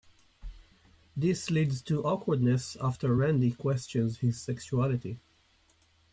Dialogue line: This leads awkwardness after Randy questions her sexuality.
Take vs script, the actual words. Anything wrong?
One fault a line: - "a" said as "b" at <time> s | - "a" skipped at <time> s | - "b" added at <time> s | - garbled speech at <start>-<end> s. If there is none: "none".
- "to" added at 1.8 s
- "her" said as "his" at 4.2 s